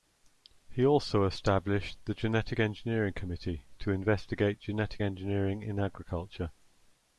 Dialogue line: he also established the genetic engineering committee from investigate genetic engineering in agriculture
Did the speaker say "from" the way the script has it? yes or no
no